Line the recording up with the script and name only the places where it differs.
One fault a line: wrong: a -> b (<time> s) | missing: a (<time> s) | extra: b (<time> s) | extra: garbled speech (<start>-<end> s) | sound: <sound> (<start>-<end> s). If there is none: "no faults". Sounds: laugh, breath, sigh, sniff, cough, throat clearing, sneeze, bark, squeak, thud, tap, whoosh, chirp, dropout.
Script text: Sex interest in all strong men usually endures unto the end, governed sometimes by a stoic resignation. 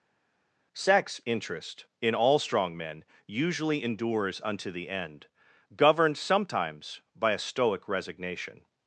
no faults